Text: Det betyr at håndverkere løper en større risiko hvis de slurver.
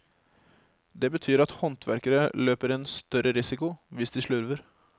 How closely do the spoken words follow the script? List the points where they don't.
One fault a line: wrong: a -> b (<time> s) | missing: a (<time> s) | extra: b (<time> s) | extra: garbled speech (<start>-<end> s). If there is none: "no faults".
no faults